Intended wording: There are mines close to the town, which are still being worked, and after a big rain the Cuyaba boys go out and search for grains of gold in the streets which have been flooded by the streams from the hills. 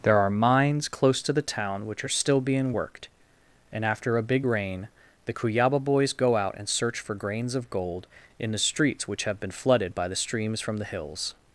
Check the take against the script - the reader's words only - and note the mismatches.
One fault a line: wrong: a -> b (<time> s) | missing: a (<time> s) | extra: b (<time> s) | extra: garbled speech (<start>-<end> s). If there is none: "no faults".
no faults